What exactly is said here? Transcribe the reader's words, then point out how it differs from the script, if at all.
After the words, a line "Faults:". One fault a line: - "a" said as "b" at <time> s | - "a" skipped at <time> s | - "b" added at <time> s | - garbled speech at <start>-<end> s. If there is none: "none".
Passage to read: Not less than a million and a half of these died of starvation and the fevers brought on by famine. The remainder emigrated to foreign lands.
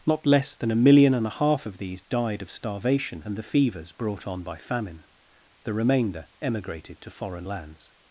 Not less than a million and a half of these died of starvation and the fevers brought on by famine. The remainder emigrated to foreign lands.
Faults:
none